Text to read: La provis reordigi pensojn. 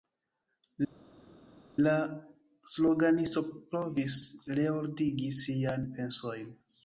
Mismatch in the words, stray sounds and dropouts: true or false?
true